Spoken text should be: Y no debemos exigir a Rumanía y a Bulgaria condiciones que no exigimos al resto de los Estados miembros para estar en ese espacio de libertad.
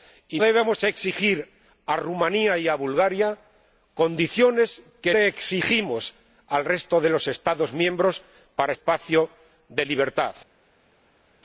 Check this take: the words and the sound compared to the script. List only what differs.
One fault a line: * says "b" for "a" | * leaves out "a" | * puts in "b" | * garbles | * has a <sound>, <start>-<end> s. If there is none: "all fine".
* leaves out "no"
* leaves out "no"
* leaves out "estar en ese"